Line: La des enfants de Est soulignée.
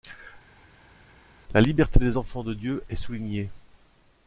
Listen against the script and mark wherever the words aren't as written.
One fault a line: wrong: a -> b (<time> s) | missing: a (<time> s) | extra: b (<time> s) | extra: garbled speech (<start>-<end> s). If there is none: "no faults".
extra: liberté (1.6 s)
extra: Dieu (2.5 s)